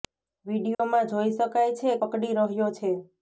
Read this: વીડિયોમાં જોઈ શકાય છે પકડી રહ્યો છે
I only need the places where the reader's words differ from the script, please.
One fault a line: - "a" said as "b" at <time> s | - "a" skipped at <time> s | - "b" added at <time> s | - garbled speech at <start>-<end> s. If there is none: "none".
none